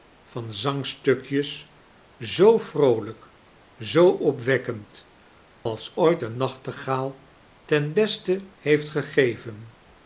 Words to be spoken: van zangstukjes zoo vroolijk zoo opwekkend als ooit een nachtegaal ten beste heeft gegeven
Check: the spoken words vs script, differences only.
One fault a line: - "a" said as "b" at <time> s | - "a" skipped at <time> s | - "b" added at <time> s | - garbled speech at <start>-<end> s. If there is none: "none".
none